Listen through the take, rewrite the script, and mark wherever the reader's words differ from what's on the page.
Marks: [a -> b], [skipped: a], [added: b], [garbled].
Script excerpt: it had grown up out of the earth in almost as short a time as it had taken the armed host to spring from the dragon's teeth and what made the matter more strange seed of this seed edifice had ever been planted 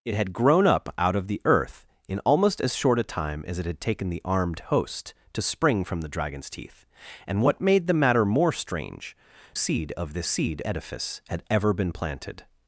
it had grown up out of the earth in almost as short a time as it had taken the armed host to spring from the dragon's teeth and what made the matter more strange seed of this seed edifice had ever been planted